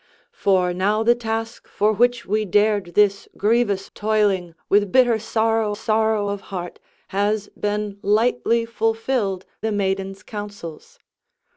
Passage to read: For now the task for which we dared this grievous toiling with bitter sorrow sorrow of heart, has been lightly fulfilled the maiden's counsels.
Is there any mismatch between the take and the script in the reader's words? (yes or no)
no